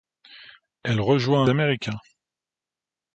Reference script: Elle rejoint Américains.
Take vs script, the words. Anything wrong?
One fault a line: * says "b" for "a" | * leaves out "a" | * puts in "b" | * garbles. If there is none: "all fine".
all fine